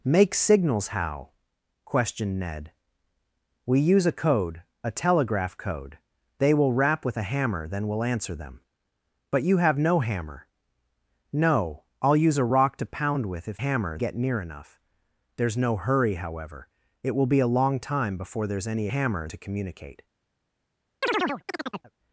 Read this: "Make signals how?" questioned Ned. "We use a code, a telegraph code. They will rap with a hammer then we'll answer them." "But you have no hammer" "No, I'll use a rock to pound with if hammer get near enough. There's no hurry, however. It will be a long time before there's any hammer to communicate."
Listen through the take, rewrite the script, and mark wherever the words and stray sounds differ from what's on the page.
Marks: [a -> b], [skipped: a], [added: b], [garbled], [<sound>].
"Make signals how?" questioned Ned. "We use a code, a telegraph code. They will rap with a hammer then we'll answer them." "But you have no hammer" "No, I'll use a rock to pound with if hammer get near enough. There's no hurry, however. It will be a long time before there's any hammer to communicate." [chirp]